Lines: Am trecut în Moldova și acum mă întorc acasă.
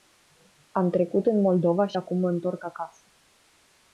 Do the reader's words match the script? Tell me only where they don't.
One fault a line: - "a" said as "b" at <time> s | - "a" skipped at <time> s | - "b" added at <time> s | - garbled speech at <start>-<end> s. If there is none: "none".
none